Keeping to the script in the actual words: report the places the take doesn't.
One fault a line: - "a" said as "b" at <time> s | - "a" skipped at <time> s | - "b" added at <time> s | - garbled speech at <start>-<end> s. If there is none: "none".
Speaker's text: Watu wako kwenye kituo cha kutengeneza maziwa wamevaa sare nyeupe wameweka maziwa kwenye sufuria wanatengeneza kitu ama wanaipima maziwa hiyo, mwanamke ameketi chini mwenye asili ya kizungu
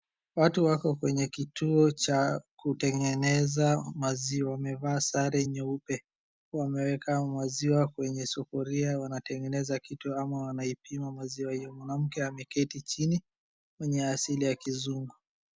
none